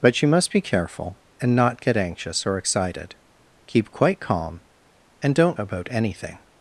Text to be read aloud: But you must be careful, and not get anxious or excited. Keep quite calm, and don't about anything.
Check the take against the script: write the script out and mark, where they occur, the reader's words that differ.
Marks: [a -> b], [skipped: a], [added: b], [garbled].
But you must be careful, and not get anxious or excited. Keep quite calm, and don't about anything.